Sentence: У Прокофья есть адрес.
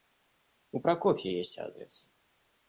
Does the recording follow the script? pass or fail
pass